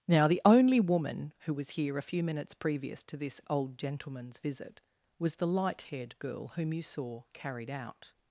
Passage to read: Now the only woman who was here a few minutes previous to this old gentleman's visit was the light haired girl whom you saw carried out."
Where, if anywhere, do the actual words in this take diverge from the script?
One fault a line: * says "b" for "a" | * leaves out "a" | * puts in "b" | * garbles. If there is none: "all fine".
all fine